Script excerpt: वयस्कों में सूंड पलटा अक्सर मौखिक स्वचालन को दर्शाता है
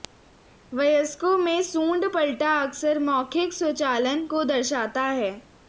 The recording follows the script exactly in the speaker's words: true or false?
true